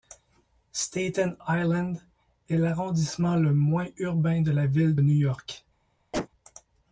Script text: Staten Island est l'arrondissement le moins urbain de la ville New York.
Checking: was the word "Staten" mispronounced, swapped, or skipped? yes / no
no